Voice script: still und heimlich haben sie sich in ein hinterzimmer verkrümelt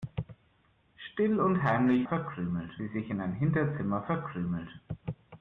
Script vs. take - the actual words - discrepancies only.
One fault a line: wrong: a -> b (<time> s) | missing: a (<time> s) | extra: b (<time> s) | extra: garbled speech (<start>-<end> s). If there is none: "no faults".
wrong: haben -> verkrümelt (2.1 s)